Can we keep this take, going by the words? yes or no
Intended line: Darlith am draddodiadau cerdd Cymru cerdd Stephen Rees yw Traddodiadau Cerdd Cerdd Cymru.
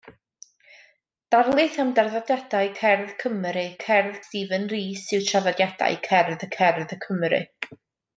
yes